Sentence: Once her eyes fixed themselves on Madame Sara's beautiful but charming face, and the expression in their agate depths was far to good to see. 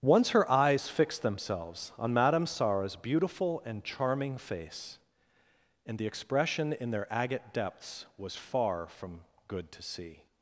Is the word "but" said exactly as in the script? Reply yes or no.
no